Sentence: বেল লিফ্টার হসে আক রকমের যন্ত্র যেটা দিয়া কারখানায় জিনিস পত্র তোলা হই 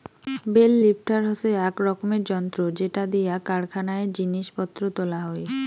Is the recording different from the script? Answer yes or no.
no